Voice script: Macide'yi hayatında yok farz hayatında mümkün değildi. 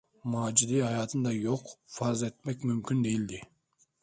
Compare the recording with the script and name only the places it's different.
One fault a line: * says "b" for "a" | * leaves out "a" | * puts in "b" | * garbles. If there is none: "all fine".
* says "etmek" for "hayatında"